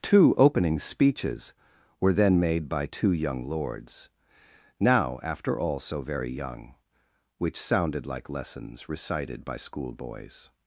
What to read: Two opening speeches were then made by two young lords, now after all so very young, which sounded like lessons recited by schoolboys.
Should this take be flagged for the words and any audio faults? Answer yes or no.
no